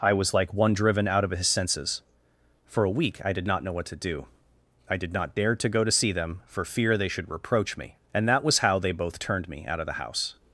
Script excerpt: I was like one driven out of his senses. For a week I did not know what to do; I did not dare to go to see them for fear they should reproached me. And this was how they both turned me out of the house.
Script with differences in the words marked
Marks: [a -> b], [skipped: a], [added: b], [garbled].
I was like one driven out of his senses. For a week I did not know what to do; I did not dare to go to see them for fear they should [reproached -> reproach] me. And [this -> that] was how they both turned me out of the house.